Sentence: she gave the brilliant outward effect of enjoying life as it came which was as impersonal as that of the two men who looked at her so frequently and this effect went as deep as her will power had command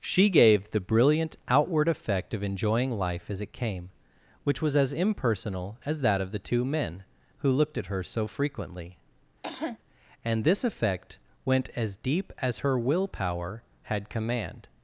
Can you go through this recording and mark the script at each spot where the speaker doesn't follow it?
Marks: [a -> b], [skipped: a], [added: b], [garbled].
she gave the brilliant outward effect of enjoying life as it came which was as impersonal as that of the two men who looked at her so frequently and this effect went as deep as her will power had command